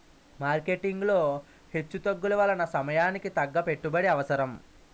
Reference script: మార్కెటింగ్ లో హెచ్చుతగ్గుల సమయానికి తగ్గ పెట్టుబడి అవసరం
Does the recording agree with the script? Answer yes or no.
no